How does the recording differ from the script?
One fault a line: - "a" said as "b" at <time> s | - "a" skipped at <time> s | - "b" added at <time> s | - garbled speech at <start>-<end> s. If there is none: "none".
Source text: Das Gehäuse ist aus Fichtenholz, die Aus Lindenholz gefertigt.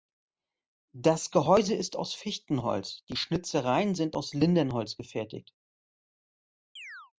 - "Schnitzereien sind" added at 3.1 s